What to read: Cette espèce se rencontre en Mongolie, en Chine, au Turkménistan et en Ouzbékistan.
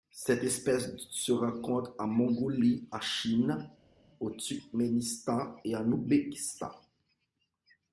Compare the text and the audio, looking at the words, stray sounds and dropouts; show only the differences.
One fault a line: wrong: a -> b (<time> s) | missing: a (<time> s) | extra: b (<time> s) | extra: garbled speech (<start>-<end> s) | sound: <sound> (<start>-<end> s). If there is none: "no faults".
no faults